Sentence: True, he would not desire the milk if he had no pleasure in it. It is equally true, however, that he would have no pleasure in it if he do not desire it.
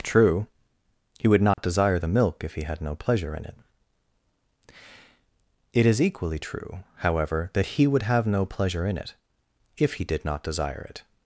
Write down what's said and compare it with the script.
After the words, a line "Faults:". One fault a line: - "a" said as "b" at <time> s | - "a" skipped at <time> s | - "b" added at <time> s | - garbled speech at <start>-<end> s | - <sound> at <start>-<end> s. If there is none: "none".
True, he would not desire the milk if he had no pleasure in it. It is equally true, however, that he would have no pleasure in it if he did not desire it.
Faults:
- dropout at 1.5-1.6 s
- "do" said as "did" at 10.0 s